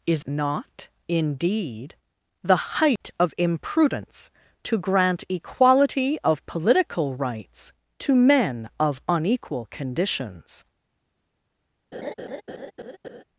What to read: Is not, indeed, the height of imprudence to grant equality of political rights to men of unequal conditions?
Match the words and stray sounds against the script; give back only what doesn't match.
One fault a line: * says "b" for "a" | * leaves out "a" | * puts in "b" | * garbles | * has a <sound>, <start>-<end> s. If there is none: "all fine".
* has a dropout, 3.0-3.0 s
* has a laugh, 11.9-13.2 s